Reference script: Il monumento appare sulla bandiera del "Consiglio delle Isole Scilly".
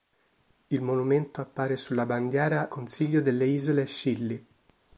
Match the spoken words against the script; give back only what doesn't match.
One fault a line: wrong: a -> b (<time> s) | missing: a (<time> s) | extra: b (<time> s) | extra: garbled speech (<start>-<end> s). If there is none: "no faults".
missing: del (2.7 s)